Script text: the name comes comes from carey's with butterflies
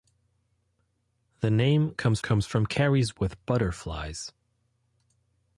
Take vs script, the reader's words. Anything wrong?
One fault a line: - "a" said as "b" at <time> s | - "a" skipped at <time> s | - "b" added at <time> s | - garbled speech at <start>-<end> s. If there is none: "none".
none